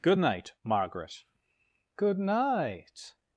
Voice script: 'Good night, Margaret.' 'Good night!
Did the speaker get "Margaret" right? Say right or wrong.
right